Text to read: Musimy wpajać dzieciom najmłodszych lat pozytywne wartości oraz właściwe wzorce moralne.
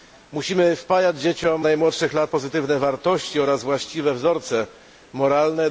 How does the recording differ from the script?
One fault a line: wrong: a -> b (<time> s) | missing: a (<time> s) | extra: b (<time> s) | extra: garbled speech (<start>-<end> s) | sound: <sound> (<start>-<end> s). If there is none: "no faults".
no faults